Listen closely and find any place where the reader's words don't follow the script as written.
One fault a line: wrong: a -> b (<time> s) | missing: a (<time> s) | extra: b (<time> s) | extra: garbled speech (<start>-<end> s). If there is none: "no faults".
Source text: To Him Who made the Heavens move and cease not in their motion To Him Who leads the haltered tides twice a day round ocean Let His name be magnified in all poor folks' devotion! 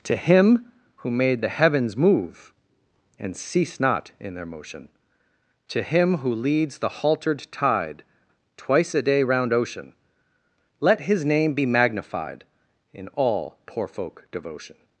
wrong: tides -> tide (7.5 s)
wrong: folks -> folk (13.9 s)